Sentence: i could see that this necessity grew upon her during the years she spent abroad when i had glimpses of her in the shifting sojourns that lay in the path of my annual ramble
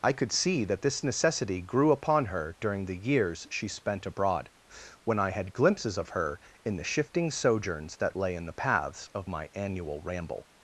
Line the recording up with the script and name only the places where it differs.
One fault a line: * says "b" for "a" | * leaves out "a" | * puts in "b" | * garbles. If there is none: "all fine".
* says "paths" for "path"